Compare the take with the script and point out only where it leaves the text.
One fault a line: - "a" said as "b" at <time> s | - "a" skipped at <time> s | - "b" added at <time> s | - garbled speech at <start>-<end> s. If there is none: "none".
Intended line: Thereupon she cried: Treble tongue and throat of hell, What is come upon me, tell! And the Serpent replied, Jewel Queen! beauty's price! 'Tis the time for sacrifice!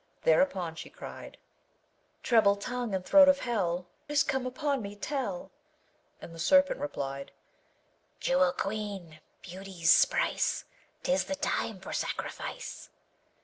- "What" skipped at 3.9 s